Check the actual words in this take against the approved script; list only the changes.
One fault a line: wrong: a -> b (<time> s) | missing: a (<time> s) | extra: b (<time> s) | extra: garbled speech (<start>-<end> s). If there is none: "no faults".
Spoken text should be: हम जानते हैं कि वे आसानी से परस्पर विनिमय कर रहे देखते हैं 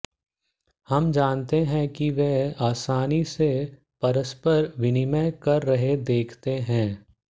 no faults